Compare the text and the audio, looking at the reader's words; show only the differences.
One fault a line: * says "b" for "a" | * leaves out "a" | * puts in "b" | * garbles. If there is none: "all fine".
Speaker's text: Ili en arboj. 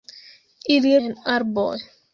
all fine